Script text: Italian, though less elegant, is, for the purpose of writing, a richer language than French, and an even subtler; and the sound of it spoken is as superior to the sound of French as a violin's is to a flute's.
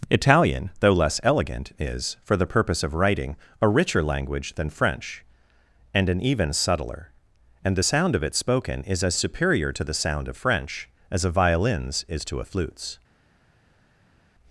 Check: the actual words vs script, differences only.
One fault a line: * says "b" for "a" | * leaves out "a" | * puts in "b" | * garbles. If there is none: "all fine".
all fine